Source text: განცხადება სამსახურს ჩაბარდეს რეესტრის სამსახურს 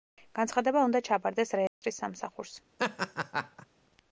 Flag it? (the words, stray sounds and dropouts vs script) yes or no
yes